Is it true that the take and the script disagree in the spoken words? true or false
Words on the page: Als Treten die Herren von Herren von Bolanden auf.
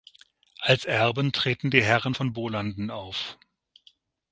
true